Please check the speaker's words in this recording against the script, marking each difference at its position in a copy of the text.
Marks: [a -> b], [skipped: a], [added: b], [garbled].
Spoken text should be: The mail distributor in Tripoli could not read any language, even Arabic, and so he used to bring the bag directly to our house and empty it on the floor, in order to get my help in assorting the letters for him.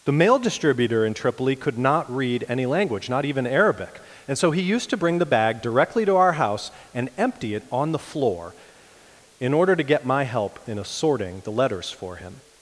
The mail distributor in Tripoli could not read any language, [added: not] even Arabic, and so he used to bring the bag directly to our house and empty it on the floor, in order to get my help in assorting the letters for him.